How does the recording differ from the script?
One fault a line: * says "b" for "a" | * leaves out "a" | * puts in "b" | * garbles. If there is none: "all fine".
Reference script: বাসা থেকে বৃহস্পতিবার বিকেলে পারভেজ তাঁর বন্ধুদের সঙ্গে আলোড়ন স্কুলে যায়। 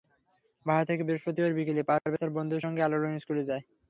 all fine